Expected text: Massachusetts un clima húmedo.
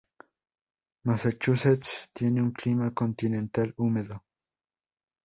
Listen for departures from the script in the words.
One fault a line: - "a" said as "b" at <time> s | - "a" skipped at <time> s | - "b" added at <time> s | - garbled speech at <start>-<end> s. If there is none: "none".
- "tiene" added at 2.1 s
- "continental" added at 2.9 s